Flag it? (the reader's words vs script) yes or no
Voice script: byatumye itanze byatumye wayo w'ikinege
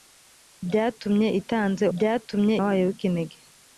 no